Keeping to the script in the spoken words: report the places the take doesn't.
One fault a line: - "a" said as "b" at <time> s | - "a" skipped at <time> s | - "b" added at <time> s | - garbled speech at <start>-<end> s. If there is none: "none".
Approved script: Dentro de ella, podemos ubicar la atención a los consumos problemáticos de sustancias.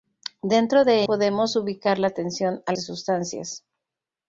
- "ella" skipped at 1.0 s
- "los consumos problemáticos" skipped at 2.7 s